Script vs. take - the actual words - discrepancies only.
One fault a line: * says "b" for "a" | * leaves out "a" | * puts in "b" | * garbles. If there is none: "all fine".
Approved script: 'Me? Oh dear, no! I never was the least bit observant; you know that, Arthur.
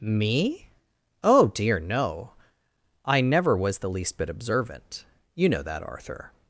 all fine